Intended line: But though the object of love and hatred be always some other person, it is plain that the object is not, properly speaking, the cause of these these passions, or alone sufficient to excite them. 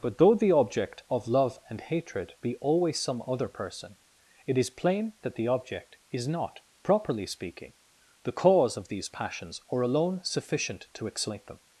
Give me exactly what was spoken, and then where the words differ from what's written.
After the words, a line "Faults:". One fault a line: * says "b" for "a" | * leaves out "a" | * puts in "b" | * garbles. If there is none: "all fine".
But though the object of love and hatred be always some other person, it is plain that the object is not, properly speaking, the cause of these passions, or alone sufficient to excite them.
Faults:
* leaves out "these"